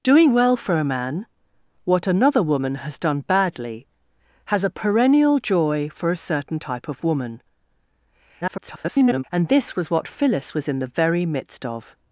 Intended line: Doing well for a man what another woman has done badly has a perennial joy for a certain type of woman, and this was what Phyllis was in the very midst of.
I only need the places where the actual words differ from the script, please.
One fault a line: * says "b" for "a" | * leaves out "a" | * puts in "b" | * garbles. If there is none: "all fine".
* garbles